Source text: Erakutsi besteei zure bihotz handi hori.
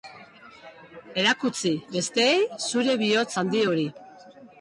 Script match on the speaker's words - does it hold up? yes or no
yes